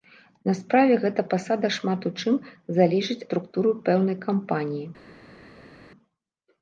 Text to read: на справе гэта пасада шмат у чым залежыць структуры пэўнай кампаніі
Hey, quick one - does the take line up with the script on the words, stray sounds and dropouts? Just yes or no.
yes